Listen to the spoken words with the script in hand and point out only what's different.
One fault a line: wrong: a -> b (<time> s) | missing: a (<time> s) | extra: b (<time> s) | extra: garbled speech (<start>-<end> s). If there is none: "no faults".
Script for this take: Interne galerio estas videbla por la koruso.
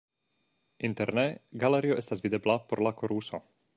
no faults